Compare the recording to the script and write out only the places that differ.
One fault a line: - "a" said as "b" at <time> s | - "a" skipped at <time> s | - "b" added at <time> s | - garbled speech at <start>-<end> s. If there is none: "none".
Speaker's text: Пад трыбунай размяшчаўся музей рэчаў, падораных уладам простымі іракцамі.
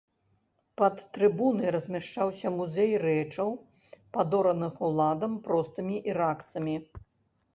none